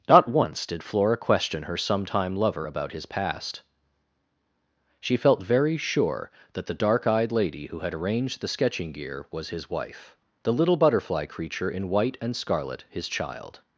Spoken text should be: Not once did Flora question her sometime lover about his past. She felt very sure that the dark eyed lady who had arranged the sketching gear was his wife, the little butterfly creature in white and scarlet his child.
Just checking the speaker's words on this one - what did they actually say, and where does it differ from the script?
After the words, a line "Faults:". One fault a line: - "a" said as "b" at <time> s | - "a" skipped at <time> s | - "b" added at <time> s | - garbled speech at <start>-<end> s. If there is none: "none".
Not once did Flora question her sometime lover about his past. She felt very sure that the dark eyed lady who had arranged the sketching gear was his wife, the little butterfly creature in white and scarlet his child.
Faults:
none